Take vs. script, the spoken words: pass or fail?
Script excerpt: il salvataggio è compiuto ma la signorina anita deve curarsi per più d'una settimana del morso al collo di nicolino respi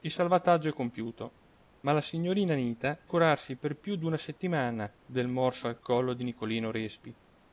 fail